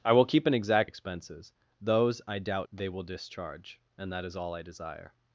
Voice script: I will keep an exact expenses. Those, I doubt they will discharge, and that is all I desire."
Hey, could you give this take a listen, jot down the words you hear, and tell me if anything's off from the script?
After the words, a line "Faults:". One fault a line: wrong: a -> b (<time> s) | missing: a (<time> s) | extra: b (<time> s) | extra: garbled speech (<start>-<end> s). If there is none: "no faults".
I will keep an exact expenses. Those, I doubt they will discharge, and that is all I desire."
Faults:
no faults